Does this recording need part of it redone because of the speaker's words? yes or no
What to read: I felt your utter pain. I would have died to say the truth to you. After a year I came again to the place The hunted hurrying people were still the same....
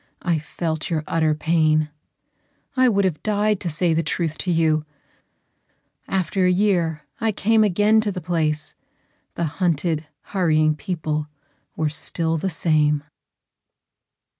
no